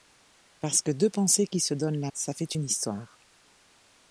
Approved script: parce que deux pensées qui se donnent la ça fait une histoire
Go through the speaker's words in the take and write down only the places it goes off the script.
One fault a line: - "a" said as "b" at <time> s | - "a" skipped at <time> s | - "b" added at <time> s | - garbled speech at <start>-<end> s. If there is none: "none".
none